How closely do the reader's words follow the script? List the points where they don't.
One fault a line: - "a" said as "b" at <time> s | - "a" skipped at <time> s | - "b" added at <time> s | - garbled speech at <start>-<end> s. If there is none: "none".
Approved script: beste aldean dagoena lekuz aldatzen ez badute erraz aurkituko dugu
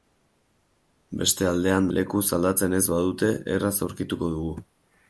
- "dagoena" skipped at 1.9 s